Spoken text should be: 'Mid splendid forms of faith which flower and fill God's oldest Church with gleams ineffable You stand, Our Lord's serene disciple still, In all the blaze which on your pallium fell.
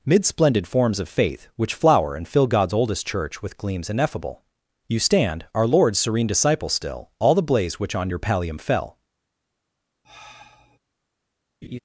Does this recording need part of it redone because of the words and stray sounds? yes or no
yes